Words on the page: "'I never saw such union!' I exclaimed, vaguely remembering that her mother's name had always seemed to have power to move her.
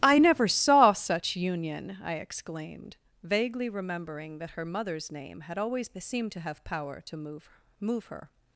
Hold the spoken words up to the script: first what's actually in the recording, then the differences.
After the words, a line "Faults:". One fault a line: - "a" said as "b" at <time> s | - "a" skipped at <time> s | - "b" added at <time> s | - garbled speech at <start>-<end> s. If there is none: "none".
"'I never saw such union!' I exclaimed, vaguely remembering that her mother's name had always seemed to have power to move move her.
Faults:
- "move" added at 7.8 s